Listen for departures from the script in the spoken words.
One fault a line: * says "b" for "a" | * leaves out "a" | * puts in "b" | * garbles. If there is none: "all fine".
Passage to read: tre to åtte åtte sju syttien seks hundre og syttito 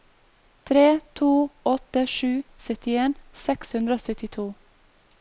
* leaves out "åtte"